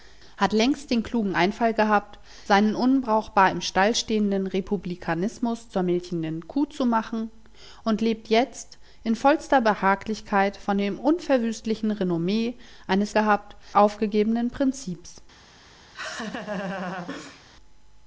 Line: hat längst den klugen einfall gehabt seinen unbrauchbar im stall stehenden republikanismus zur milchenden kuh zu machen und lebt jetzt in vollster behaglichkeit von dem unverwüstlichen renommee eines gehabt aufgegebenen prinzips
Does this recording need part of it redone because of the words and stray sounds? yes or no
yes